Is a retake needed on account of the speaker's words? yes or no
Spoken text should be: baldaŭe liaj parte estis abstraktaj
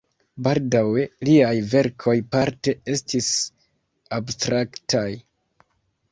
yes